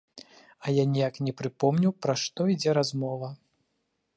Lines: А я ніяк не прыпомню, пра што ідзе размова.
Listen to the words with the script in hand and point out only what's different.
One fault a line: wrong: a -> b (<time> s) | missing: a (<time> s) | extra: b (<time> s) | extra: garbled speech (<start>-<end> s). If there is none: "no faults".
no faults